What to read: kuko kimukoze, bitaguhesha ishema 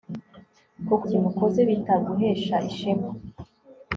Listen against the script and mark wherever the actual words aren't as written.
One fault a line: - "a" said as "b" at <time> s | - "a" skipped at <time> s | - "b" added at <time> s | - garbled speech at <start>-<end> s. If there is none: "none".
none